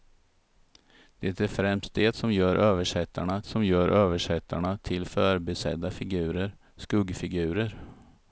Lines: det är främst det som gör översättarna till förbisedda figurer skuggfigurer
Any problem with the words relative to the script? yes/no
yes